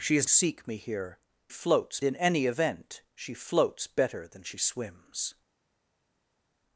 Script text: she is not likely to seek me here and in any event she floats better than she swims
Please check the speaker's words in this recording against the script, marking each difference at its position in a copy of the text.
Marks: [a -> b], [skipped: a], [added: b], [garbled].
she is [skipped: not likely to] seek me here [and -> floats] in any event she floats better than she swims